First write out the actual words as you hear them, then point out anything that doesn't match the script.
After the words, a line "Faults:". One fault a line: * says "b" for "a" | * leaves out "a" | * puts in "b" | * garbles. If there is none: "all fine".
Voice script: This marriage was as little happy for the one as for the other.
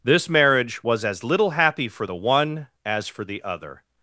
This marriage was as little happy for the one as for the other.
Faults:
all fine